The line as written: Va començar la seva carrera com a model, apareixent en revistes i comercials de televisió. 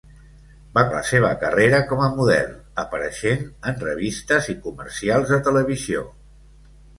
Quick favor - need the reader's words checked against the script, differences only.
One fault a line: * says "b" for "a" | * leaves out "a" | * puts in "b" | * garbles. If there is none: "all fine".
* leaves out "començar"